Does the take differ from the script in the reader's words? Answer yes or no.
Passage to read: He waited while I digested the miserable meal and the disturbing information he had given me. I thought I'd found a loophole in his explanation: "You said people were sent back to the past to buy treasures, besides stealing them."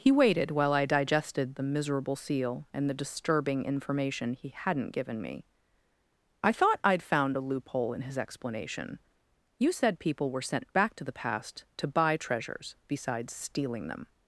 yes